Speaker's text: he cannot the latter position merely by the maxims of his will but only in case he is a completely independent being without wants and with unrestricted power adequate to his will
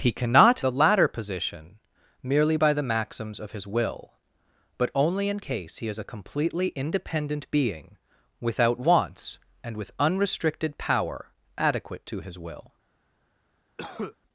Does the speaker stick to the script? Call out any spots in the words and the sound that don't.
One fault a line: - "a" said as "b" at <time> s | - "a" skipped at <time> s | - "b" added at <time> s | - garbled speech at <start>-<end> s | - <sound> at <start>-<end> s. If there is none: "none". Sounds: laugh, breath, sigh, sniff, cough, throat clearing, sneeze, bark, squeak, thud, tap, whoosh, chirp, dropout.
- cough at 13.8-14.2 s